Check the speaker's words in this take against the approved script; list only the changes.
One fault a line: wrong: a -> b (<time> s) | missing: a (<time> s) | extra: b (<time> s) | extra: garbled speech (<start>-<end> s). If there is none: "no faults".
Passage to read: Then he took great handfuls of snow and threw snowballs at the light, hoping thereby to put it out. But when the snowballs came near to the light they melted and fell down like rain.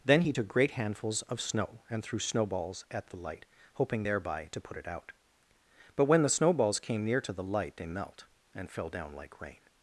wrong: melted -> melt (7.9 s)